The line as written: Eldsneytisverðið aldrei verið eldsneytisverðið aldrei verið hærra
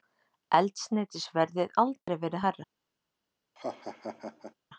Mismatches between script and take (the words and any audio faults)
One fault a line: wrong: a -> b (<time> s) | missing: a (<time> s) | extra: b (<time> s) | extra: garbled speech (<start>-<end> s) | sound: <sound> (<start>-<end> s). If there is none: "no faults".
sound: dropout (2.0-2.1 s)
missing: eldsneytisverðið aldrei verið (2.5 s)
sound: laugh (3.6-4.5 s)